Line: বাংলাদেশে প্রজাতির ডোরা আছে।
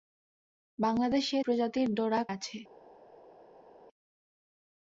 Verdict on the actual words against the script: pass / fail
pass